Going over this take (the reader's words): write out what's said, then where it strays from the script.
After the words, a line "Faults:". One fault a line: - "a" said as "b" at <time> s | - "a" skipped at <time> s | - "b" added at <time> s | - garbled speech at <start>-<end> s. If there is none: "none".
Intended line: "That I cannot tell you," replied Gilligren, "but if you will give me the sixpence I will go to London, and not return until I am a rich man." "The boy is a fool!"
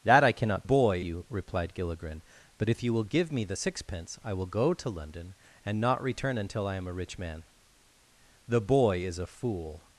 "That I cannot boy you," replied Gilligren, "but if you will give me the sixpence I will go to London, and not return until I am a rich man." "The boy is a fool!"
Faults:
- "tell" said as "boy" at 0.6 s